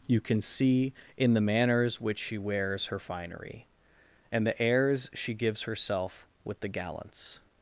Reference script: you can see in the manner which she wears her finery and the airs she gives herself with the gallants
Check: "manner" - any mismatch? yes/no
yes